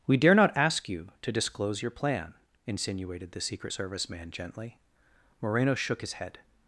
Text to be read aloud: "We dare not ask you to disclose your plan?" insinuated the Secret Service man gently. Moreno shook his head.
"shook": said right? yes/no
yes